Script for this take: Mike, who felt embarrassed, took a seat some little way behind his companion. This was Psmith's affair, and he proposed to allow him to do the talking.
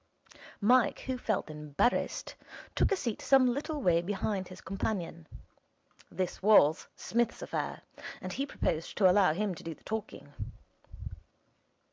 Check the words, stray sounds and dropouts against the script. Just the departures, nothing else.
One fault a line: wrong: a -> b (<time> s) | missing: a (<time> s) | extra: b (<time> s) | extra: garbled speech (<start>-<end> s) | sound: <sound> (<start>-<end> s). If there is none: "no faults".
no faults